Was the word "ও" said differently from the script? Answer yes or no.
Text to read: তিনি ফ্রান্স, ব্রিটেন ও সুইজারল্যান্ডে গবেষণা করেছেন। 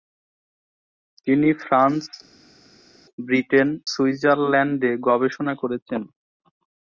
yes